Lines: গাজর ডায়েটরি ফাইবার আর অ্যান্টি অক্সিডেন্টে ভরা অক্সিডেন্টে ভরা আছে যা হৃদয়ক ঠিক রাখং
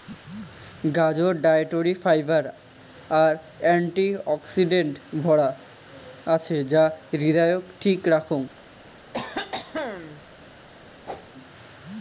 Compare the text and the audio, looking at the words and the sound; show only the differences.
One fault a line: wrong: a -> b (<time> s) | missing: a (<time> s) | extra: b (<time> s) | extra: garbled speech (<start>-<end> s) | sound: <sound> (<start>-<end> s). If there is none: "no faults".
missing: অক্সিডেন্টে ভরা (5.5 s)
sound: cough (9.1-10.2 s)
sound: whoosh (11.1-11.3 s)